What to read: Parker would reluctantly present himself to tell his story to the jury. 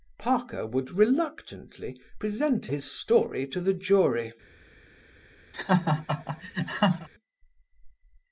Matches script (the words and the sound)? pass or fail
fail